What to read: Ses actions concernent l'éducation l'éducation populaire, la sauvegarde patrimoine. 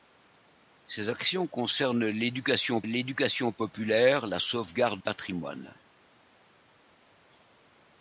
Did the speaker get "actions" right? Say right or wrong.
right